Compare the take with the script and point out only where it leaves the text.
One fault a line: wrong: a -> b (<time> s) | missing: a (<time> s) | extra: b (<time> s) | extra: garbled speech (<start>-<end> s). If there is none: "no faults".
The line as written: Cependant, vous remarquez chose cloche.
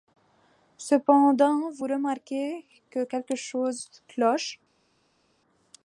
extra: que quelque (2.9 s)